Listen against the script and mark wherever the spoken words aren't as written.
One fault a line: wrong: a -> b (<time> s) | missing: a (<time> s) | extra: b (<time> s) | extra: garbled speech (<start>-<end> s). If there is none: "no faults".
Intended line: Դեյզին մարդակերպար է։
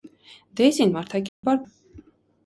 no faults